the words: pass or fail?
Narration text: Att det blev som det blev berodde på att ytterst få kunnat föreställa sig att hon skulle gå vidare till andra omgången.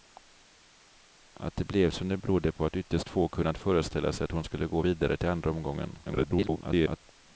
fail